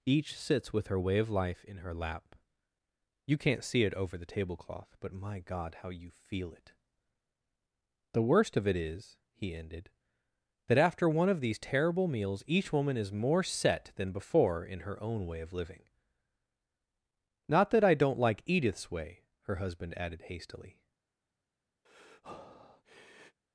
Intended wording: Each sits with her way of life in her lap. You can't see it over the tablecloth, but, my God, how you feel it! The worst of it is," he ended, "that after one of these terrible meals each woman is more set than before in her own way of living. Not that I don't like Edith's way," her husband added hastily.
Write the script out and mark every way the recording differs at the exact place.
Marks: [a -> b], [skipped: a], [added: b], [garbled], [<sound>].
Each sits with her way of life in her lap. You can't see it over the tablecloth, but, my God, how you feel it! The worst of it is," he ended, "that after one of these terrible meals each woman is more set than before in her own way of living. Not that I don't like Edith's way," her husband added hastily. [breath]